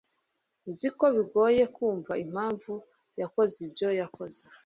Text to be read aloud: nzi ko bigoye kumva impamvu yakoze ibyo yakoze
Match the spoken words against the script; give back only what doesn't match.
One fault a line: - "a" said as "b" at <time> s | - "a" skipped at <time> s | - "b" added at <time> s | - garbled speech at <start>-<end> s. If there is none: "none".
none